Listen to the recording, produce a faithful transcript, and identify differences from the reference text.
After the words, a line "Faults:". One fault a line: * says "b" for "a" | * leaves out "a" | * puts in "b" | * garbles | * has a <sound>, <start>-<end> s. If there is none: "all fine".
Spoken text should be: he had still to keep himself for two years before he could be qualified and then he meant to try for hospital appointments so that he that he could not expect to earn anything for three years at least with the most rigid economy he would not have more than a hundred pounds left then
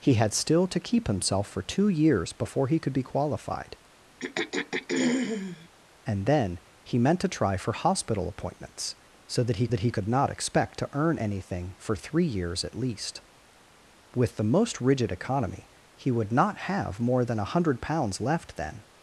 he had still to keep himself for two years before he could be qualified and then he meant to try for hospital appointments so that he that he could not expect to earn anything for three years at least with the most rigid economy he would not have more than a hundred pounds left then
Faults:
* has a throat clearing, 4.2-5.7 s